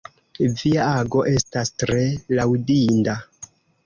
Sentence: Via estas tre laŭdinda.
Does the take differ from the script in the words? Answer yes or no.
yes